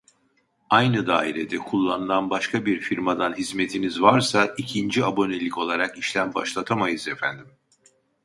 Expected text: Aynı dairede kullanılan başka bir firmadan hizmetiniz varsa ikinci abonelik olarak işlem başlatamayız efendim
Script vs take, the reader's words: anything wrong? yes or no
no